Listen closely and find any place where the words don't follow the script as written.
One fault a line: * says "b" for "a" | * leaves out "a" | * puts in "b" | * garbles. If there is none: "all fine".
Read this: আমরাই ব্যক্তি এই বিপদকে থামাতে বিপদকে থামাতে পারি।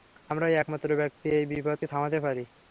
* puts in "একমাত্র"
* leaves out "বিপদকে থামাতে"